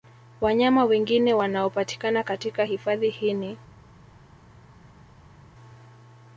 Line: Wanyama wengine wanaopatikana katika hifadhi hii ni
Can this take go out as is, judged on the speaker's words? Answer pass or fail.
pass